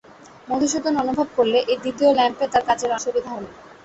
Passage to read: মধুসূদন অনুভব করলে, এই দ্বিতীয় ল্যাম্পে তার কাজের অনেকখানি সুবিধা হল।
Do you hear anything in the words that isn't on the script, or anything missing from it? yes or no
yes